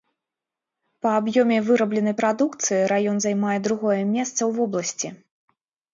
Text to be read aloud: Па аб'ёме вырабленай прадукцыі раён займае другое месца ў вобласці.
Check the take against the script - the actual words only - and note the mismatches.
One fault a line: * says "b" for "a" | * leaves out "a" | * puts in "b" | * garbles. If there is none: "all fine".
all fine